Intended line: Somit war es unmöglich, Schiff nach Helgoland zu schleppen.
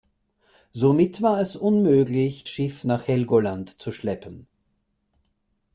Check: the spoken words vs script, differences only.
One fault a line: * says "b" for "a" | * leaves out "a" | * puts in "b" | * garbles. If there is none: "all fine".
all fine